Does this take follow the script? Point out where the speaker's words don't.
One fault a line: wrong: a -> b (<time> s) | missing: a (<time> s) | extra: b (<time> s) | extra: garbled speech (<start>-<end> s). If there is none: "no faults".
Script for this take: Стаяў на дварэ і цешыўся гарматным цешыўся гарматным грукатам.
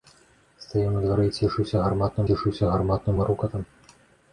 no faults